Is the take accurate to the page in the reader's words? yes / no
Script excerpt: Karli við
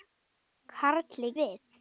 yes